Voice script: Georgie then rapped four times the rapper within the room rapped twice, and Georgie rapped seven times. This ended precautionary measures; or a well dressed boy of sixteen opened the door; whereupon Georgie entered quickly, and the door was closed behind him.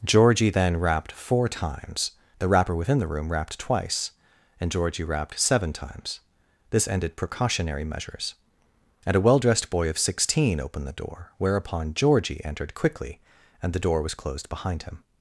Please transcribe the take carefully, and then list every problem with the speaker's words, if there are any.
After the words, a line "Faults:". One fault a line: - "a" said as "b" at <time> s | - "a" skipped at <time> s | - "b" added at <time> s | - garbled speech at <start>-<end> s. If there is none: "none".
Georgie then rapped four times the rapper within the room rapped twice, and Georgie rapped seven times. This ended precautionary measures; and a well dressed boy of sixteen opened the door; whereupon Georgie entered quickly, and the door was closed behind him.
Faults:
- "or" said as "and" at 9.1 s